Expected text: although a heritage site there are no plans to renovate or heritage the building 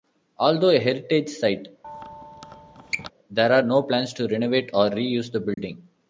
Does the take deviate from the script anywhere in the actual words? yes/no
yes